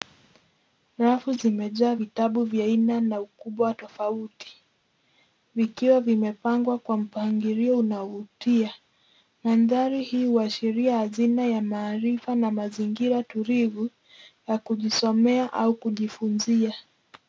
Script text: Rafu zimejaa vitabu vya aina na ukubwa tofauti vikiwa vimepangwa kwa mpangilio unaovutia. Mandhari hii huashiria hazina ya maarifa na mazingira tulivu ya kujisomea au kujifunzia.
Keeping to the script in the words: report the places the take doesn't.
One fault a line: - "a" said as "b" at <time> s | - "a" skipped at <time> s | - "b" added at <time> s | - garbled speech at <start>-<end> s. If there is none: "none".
none